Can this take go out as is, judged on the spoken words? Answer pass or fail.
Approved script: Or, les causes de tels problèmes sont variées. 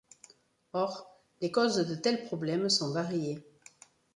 pass